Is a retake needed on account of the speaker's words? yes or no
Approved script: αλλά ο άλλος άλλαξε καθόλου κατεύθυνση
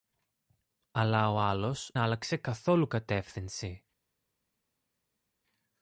no